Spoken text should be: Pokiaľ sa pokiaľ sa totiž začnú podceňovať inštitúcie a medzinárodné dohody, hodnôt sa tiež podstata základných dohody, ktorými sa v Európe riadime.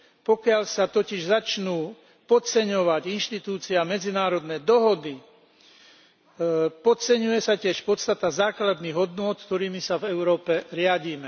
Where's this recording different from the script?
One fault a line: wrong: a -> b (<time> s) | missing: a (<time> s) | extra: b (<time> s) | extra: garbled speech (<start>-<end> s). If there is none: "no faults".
missing: pokiaľ sa (0.8 s)
wrong: hodnôt -> podceňuje (6.8 s)
wrong: dohody -> hodnôt (8.9 s)